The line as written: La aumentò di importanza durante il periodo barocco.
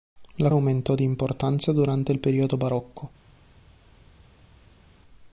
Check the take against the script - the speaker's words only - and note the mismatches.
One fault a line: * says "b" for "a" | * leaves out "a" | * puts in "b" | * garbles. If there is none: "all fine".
all fine